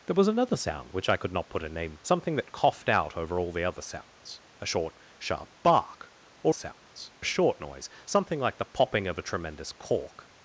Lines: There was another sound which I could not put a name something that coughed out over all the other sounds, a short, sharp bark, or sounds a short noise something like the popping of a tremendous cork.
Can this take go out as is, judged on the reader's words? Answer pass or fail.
pass